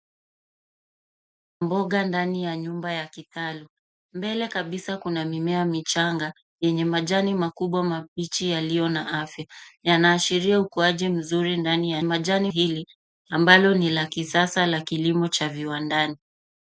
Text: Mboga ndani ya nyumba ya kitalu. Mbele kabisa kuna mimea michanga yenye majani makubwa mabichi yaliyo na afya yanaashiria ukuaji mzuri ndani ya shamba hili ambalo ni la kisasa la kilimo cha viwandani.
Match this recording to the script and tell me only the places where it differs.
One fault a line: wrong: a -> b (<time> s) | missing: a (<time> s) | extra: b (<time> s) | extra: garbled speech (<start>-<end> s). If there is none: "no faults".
wrong: shamba -> majani (12.0 s)